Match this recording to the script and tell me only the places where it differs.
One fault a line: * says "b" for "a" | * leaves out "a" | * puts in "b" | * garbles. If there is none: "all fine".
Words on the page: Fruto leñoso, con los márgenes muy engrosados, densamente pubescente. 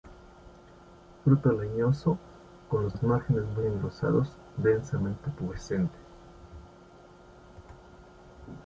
* puts in "los"